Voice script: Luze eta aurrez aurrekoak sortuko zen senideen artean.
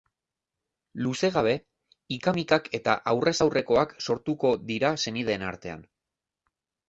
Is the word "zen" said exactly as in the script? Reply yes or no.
no